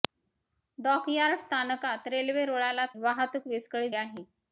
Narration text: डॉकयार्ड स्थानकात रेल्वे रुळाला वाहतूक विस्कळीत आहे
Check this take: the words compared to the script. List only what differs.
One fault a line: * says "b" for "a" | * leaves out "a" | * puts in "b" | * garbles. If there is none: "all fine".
all fine